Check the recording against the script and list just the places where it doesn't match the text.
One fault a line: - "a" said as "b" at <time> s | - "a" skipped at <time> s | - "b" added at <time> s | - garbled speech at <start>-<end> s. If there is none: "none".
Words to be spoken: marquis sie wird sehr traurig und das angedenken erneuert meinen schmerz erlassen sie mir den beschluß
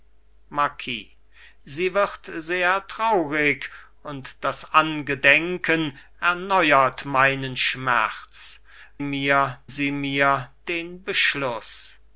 - "erlassen" said as "mir" at 9.0 s